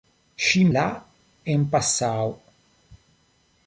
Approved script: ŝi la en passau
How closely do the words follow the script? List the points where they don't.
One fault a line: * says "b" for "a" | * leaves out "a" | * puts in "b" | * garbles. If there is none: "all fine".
all fine